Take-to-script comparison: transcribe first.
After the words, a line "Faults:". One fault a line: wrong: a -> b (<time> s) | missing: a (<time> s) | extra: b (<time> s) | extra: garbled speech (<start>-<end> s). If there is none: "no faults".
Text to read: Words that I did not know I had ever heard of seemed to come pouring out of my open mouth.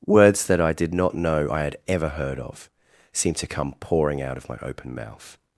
Words that I did not know I had ever heard of seemed to come pouring out of my open mouth.
Faults:
no faults